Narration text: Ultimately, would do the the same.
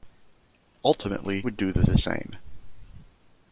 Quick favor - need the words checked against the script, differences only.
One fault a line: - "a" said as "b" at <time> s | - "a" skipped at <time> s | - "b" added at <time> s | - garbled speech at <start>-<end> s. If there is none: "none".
none